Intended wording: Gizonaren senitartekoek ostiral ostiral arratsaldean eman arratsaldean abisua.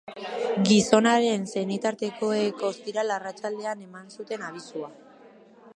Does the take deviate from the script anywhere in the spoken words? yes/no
yes